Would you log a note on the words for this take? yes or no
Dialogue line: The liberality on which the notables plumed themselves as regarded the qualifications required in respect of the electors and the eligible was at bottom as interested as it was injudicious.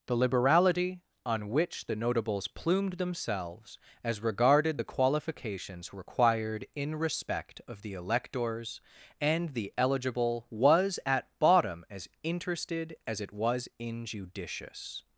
no